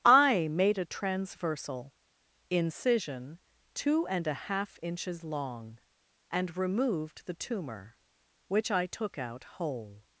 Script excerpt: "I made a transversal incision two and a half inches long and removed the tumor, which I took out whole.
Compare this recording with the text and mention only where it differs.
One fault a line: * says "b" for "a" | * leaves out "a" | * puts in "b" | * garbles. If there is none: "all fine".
all fine